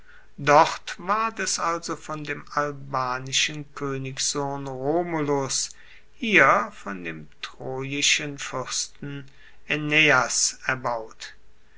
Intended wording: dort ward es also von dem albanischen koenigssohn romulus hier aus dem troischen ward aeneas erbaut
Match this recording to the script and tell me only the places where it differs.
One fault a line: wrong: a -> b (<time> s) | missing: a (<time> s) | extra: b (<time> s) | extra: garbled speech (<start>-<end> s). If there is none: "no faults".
wrong: aus -> von (6.7 s)
wrong: ward -> fuersten (8.4 s)